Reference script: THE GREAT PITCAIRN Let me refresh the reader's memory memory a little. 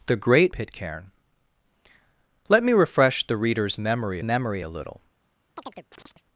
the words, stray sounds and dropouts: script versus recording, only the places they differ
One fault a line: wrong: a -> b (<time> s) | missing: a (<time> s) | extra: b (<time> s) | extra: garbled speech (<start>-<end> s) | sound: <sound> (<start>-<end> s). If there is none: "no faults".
sound: chirp (5.6-6.2 s)